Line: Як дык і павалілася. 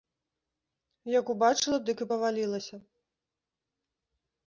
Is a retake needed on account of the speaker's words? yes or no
yes